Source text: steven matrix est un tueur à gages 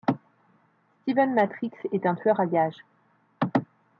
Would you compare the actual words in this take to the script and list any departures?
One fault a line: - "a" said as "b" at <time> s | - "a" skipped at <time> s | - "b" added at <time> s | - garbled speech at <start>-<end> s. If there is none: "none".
none